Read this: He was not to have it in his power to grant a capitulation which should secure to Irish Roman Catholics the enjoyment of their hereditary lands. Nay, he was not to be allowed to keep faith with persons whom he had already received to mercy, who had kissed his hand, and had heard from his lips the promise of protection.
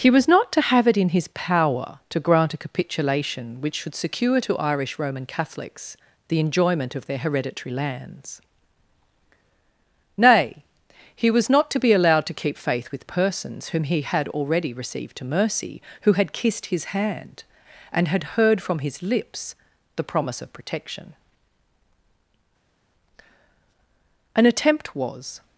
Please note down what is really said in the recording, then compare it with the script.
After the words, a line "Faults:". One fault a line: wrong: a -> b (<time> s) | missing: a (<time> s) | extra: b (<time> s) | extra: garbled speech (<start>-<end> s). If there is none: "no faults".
He was not to have it in his power to grant a capitulation which should secure to Irish Roman Catholics the enjoyment of their hereditary lands. Nay, he was not to be allowed to keep faith with persons whom he had already received to mercy, who had kissed his hand, and had heard from his lips the promise of protection. An attempt was
Faults:
extra: An attempt was (24.4 s)